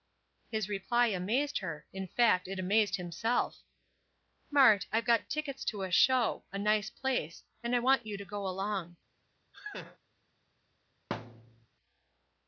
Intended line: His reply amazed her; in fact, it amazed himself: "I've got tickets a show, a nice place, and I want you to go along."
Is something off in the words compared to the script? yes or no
yes